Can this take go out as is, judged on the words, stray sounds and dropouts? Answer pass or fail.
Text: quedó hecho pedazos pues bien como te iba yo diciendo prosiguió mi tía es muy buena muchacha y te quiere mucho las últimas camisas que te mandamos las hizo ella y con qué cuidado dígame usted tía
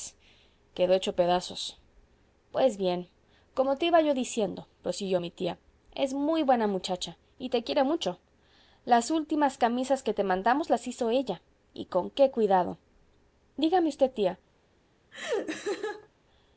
fail